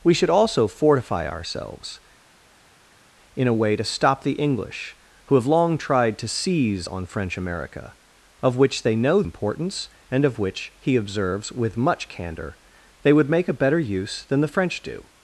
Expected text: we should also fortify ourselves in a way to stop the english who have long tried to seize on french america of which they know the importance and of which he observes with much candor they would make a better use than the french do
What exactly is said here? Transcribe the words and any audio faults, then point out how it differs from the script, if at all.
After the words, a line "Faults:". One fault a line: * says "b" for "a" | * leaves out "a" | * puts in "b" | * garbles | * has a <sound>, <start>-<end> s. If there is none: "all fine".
we should also fortify ourselves in a way to stop the english who have long tried to seize on french america of which they know importance and of which he observes with much candor they would make a better use than the french do
Faults:
* leaves out "the"